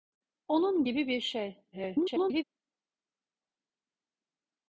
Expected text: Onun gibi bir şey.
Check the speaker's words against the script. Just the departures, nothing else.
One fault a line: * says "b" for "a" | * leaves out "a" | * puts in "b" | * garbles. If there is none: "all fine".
* garbles